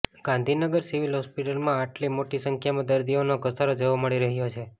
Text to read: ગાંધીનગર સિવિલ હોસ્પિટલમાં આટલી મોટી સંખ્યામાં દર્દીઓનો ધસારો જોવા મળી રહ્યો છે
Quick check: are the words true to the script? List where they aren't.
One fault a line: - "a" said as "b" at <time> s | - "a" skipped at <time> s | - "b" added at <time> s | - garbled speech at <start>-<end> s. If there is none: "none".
none